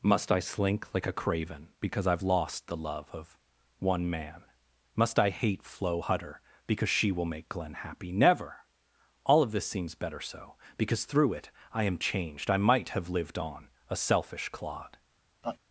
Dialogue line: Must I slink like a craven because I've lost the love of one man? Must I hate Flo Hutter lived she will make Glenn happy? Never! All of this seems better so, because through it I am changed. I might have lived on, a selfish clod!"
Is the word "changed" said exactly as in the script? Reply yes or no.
yes